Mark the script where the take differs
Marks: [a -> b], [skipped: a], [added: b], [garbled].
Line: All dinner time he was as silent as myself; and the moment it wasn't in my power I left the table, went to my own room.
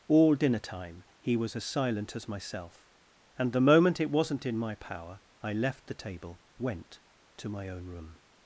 All dinner time he was as silent as myself; and the moment it wasn't in my power I left the table, went to my own room.